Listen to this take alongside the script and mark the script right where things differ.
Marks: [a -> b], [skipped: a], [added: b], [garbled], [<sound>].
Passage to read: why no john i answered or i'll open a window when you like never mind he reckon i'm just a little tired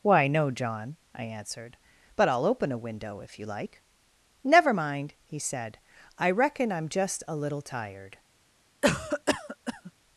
why no john i answered [or -> but] i'll open a window [when -> if] you like never mind he [added: said i] reckon i'm just a little tired [cough]